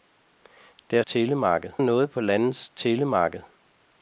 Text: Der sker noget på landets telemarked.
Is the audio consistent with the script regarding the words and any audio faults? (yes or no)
no